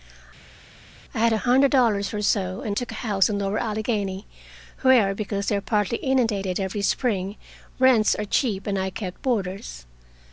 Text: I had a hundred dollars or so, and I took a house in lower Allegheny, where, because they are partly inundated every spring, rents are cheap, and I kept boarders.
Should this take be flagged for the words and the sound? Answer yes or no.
yes